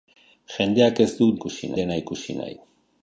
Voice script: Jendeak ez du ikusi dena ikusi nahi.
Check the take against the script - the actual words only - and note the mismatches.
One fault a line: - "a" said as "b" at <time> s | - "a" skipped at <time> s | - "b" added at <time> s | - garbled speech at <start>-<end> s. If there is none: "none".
none